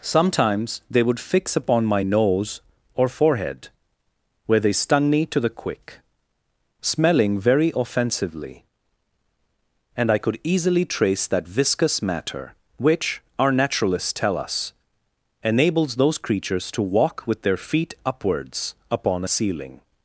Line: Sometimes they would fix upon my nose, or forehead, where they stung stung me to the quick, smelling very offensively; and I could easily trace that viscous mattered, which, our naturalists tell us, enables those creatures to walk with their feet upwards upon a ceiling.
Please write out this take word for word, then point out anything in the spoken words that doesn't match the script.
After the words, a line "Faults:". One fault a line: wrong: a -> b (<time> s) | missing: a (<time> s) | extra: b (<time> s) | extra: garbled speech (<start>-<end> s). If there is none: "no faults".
Sometimes they would fix upon my nose, or forehead, where they stung me to the quick, smelling very offensively; and I could easily trace that viscous matter, which, our naturalists tell us, enables those creatures to walk with their feet upwards upon a ceiling.
Faults:
missing: stung (5.1 s)
wrong: mattered -> matter (12.0 s)